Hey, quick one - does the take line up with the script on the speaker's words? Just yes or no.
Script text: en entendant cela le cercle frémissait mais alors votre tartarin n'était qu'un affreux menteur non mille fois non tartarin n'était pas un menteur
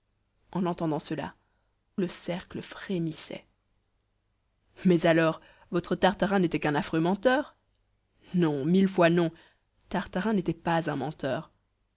yes